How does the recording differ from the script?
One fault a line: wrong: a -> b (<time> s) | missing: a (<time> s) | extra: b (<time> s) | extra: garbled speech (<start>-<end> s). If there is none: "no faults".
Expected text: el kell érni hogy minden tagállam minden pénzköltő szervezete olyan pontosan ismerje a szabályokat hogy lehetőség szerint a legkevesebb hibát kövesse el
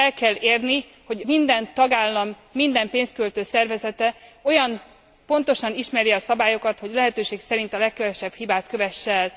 no faults